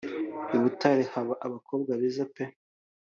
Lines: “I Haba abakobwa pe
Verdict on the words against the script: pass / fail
fail